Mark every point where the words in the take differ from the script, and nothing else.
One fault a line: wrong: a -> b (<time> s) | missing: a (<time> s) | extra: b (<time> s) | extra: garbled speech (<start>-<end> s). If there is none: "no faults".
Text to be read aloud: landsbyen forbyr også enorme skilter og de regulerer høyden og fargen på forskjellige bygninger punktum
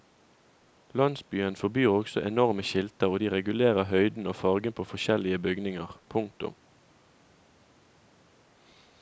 no faults